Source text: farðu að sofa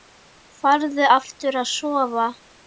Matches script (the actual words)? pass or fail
fail